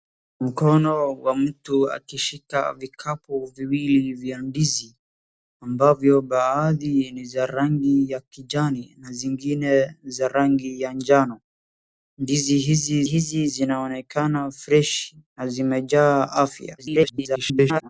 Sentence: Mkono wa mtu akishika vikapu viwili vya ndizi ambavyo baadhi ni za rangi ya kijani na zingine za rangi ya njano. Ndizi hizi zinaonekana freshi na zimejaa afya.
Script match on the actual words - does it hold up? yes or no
no